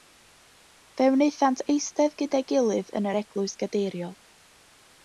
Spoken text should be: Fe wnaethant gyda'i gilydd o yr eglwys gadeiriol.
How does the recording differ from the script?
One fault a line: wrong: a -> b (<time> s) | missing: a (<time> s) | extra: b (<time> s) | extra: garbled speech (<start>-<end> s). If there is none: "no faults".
extra: eistedd (1.8 s)
wrong: o -> yn (3.0 s)